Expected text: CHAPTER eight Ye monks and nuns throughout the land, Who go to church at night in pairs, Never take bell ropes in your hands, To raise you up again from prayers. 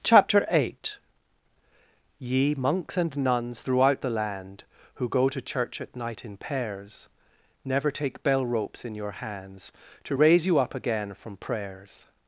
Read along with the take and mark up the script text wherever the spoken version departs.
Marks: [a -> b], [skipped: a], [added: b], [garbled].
CHAPTER eight Ye monks and nuns throughout the land, Who go to church at night in pairs, Never take bell ropes in your hands, To raise you up again from prayers.